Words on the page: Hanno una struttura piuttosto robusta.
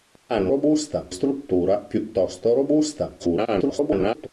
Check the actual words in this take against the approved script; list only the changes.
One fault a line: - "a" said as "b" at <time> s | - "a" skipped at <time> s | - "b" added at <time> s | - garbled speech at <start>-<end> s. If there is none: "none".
- "una" said as "robusta" at 0.5 s
- garbled speech at 3.2-4.3 s